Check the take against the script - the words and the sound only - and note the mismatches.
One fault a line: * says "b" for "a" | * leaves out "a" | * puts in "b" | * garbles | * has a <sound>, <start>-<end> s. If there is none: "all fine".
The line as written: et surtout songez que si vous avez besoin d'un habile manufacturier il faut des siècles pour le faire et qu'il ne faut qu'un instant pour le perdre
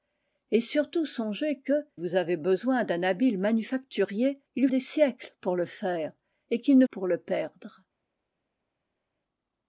* leaves out "si"
* leaves out "faut"
* leaves out "faut qu'un instant"